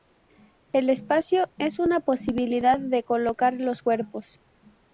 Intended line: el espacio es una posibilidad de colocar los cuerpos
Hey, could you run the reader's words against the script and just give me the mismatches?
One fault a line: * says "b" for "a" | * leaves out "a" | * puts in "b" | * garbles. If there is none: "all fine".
all fine